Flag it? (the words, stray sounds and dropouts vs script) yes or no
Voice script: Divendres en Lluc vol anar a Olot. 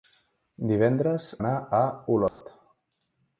yes